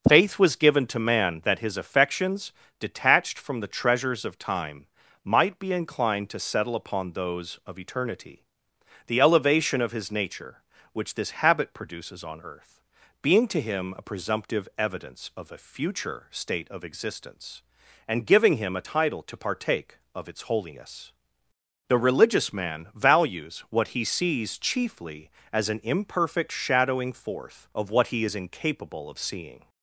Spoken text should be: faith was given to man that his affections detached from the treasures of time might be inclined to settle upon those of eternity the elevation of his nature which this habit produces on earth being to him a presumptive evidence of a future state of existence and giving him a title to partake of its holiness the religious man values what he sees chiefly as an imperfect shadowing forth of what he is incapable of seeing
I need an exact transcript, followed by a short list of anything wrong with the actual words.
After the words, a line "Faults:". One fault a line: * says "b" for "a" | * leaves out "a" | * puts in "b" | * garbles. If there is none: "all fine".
faith was given to man that his affections detached from the treasures of time might be inclined to settle upon those of eternity the elevation of his nature which this habit produces on earth being to him a presumptive evidence of a future state of existence and giving him a title to partake of its holiness the religious man values what he sees chiefly as an imperfect shadowing forth of what he is incapable of seeing
Faults:
all fine